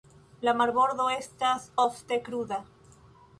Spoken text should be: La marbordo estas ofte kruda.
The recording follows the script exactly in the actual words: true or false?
true